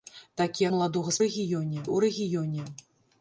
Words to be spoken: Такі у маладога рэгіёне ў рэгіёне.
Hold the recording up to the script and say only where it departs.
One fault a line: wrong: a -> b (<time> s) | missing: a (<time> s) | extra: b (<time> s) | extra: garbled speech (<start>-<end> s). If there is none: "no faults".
no faults